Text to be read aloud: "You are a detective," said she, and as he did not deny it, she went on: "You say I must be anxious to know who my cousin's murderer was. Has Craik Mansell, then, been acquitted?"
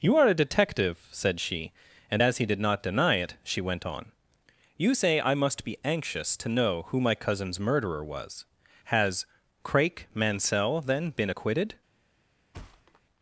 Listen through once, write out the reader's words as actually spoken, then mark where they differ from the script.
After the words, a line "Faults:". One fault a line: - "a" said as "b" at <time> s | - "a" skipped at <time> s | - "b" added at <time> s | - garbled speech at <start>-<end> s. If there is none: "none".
"You are a detective," said she, and as he did not deny it, she went on: "You say I must be anxious to know who my cousin's murderer was. Has Craik Mansell, then, been acquitted?"
Faults:
none